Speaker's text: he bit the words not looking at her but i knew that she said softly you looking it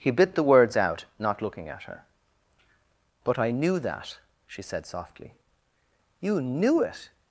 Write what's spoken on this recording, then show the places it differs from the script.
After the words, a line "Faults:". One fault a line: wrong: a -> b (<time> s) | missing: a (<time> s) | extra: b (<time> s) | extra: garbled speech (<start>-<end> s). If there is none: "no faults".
he bit the words out not looking at her but i knew that she said softly you knew it
Faults:
extra: out (0.8 s)
wrong: looking -> knew (6.4 s)